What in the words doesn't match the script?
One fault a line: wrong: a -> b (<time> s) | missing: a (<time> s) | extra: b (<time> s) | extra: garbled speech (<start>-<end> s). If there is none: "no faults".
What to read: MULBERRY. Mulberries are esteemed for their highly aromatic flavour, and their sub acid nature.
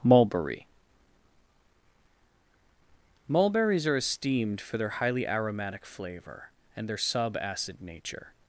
no faults